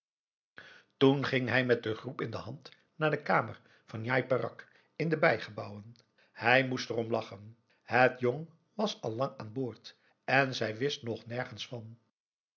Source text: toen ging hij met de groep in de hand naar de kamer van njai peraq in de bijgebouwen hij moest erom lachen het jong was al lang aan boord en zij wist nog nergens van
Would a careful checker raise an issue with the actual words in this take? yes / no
no